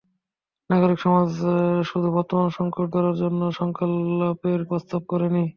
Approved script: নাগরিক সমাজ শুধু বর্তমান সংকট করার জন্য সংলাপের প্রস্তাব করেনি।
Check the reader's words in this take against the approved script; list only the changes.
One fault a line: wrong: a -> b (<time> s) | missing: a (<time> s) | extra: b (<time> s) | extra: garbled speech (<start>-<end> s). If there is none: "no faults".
no faults